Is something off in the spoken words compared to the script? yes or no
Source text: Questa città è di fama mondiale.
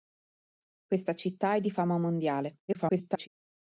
yes